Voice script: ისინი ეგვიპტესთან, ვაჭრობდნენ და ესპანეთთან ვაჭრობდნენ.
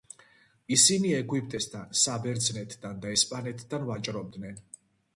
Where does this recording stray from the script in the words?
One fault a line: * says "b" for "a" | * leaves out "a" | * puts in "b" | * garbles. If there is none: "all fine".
* says "საბერძნეთთან" for "ვაჭრობდნენ"